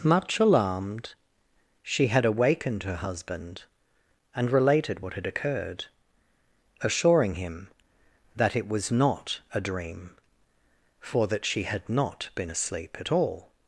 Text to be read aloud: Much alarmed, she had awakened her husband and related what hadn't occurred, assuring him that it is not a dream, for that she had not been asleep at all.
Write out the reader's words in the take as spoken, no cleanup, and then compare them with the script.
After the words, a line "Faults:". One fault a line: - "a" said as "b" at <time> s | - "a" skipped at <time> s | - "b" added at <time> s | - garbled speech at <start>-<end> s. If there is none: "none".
Much alarmed, she had awakened her husband and related what had occurred, assuring him that it was not a dream, for that she had not been asleep at all.
Faults:
- "hadn't" said as "had" at 5.1 s
- "is" said as "was" at 8.7 s